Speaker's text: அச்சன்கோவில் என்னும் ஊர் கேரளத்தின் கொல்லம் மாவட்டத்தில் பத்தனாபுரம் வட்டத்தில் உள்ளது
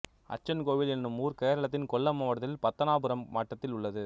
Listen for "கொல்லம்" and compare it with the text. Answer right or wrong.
right